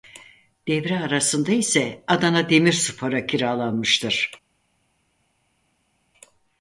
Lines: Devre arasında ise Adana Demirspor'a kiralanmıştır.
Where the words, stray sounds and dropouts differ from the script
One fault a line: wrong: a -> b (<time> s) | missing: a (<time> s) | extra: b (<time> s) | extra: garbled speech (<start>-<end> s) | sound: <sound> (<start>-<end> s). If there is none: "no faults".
no faults